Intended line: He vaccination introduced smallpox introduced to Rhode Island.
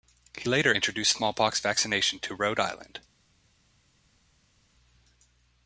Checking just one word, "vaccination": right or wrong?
wrong